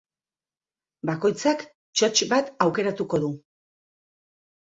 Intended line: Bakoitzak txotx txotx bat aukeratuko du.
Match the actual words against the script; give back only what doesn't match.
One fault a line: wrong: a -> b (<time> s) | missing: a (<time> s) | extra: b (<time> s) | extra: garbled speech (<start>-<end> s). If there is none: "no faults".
missing: txotx (2.3 s)